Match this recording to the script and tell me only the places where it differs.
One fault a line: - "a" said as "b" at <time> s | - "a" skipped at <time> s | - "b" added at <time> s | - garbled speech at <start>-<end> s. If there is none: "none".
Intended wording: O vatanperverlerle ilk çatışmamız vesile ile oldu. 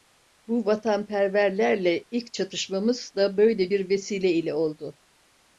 - "O" said as "Bu" at 0.5 s
- "da böyle bir" added at 3.1 s